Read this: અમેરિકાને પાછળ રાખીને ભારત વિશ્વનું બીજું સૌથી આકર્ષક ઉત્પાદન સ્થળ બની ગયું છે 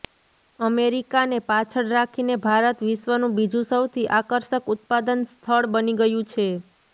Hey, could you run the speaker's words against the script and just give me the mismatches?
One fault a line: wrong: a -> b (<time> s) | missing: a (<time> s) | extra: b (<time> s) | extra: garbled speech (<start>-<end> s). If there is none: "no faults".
no faults